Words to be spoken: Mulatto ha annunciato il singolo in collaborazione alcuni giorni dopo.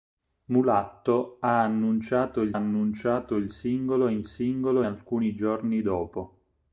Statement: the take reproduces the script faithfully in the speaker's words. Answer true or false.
false